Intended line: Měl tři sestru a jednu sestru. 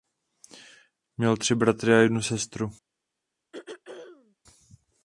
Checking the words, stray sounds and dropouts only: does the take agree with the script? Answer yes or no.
no